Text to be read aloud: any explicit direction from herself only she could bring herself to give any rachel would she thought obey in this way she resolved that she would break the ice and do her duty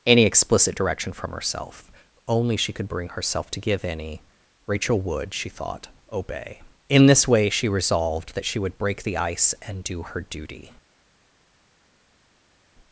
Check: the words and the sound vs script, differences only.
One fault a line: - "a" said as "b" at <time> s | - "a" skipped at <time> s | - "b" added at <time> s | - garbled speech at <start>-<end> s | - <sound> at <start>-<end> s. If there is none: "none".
none